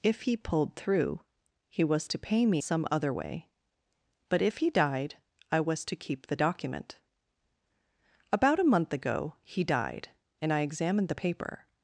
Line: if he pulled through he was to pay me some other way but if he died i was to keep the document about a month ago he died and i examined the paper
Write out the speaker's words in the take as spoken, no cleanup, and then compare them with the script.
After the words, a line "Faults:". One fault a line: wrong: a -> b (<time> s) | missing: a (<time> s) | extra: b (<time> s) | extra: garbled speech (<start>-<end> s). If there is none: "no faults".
if he pulled through he was to pay me some other way but if he died i was to keep the document about a month ago he died and i examined the paper
Faults:
no faults